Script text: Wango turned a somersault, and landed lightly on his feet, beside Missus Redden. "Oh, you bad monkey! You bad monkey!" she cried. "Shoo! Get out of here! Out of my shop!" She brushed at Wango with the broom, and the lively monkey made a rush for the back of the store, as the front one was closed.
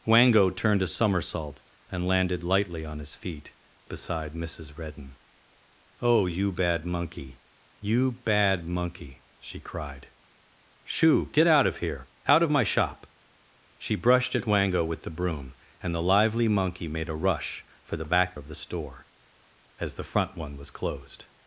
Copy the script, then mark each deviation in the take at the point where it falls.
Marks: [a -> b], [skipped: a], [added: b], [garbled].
Wango turned a somersault, and landed lightly on his feet, beside Missus Redden. "Oh, you bad monkey! You bad monkey!" she cried. "Shoo! Get out of here! Out of my shop!" She brushed at Wango with the broom, and the lively monkey made a rush for the back of the store, as the front one was closed.